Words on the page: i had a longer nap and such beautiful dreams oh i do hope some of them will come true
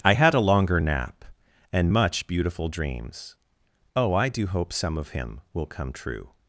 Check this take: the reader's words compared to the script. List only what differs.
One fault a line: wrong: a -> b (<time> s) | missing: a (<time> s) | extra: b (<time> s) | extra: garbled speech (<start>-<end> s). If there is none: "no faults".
wrong: such -> much (1.9 s)
wrong: them -> him (5.1 s)